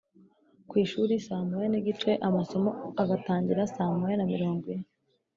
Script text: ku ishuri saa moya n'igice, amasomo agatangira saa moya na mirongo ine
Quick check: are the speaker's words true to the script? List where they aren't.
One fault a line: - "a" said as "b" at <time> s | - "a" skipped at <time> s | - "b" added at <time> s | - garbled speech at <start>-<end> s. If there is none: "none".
none